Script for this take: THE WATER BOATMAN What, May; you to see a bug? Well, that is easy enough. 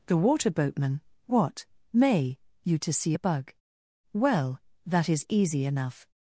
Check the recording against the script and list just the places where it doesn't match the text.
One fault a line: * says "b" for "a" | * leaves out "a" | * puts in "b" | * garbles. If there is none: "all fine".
all fine